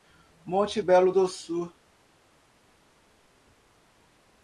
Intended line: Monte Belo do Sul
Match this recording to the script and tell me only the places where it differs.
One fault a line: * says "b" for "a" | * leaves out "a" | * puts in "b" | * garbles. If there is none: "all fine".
all fine